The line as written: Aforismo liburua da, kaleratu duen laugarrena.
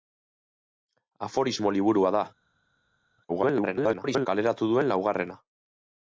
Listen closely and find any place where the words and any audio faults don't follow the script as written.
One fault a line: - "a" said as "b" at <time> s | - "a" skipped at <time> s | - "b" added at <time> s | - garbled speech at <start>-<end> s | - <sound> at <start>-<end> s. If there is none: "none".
- garbled speech at 3.3-4.3 s